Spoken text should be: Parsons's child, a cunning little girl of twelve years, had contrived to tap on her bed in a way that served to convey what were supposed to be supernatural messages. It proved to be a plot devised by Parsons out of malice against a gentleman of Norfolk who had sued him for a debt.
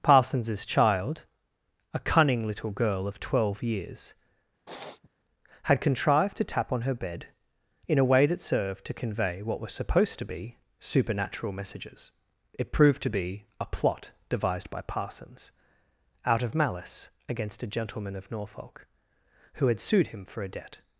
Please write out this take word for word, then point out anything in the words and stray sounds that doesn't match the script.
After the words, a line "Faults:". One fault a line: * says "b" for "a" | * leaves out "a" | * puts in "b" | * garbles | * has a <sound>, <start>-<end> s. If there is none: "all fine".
Parsons's child, a cunning little girl of twelve years, had contrived to tap on her bed in a way that served to convey what were supposed to be supernatural messages. It proved to be a plot devised by Parsons out of malice against a gentleman of Norfolk who had sued him for a debt.
Faults:
* has a sniff, 4.7-5.1 s